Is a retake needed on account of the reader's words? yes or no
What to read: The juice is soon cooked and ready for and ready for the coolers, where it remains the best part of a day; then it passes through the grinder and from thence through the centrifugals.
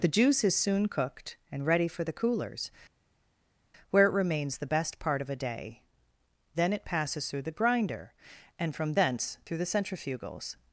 yes